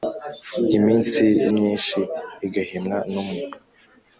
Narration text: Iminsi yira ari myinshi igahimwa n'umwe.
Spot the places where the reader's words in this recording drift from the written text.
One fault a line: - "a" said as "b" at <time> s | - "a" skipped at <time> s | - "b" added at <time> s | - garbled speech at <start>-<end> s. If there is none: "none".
- "yira ari" skipped at 1.2 s